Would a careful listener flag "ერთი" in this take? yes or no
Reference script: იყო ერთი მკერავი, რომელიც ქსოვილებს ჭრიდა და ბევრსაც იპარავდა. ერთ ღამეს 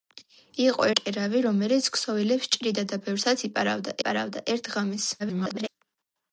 yes